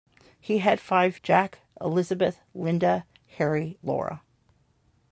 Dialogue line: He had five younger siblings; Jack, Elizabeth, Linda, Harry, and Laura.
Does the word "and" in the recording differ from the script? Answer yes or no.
yes